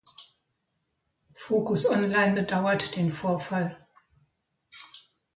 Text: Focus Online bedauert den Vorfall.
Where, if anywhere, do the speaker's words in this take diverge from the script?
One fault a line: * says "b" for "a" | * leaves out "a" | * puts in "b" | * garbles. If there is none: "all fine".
all fine